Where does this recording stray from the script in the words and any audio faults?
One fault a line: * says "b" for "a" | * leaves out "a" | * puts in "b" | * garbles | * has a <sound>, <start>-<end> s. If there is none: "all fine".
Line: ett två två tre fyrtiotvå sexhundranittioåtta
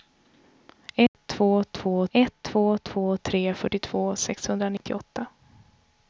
* has a dropout, 1.1-1.1 s
* puts in "ett två två"
* has a dropout, 4.8-4.8 s